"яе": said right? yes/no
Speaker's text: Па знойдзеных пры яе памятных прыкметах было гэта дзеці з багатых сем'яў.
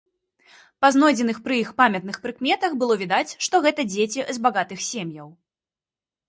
no